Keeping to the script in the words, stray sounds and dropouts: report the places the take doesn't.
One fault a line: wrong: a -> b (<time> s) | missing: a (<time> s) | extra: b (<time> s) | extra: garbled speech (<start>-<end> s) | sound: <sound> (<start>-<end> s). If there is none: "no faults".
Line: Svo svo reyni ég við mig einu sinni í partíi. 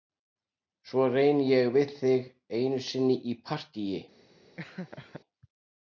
missing: svo (1.0 s)
wrong: mig -> þig (2.0 s)
sound: laugh (4.6-5.2 s)